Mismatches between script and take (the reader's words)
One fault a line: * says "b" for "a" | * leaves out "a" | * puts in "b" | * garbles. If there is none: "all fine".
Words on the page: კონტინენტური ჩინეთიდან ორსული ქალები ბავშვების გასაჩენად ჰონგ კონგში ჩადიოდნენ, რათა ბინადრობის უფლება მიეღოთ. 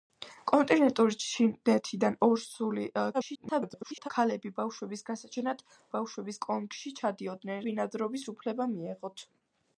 * garbles
* says "ბავშვების" for "ჰონგ"
* leaves out "რათა"